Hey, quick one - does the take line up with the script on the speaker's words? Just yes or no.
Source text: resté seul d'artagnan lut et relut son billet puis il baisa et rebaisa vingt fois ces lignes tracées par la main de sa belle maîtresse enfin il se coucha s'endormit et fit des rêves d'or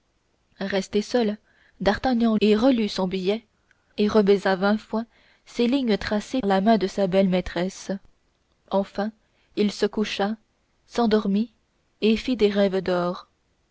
no